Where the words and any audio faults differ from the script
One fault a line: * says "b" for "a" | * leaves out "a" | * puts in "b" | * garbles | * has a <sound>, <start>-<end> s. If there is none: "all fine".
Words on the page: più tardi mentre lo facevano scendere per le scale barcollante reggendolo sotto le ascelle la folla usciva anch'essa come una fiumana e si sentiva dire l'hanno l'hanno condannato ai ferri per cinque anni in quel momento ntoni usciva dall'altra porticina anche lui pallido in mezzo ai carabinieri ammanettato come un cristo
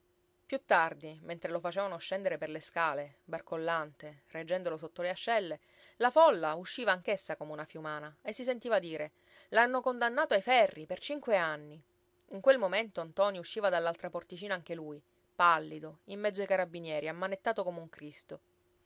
* leaves out "l'hanno"